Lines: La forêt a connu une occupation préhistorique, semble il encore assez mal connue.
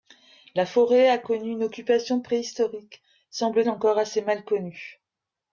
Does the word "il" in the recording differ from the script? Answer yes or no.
no